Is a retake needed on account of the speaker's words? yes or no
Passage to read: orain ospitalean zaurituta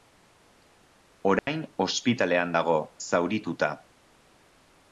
yes